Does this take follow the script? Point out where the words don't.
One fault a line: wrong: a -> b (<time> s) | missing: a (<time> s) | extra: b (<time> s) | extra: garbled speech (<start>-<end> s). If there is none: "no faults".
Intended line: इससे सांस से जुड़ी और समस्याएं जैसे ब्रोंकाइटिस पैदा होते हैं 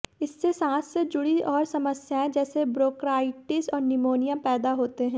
extra: और निमोनिया (3.7 s)